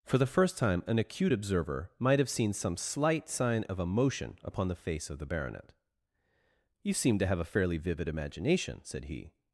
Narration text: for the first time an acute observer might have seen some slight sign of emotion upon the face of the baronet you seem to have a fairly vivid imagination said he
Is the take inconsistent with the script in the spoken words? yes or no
no